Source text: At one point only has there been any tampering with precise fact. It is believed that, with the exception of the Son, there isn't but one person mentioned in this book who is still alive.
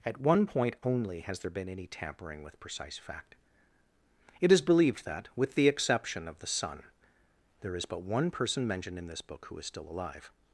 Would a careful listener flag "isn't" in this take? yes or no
yes